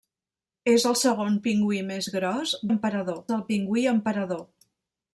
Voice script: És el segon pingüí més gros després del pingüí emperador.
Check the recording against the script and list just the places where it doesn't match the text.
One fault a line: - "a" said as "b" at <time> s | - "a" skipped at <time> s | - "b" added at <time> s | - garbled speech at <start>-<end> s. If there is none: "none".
- "després" said as "emperador" at 2.7 s